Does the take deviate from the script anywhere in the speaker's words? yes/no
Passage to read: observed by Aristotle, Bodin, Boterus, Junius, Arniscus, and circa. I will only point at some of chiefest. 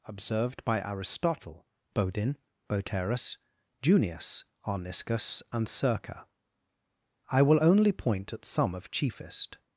no